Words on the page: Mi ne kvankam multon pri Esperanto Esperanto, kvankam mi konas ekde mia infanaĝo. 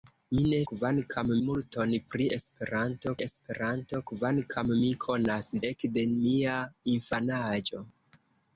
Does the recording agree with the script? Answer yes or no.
yes